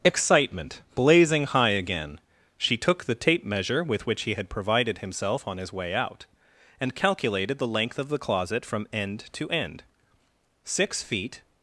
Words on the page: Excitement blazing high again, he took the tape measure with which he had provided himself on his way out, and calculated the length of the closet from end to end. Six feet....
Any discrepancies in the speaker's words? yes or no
yes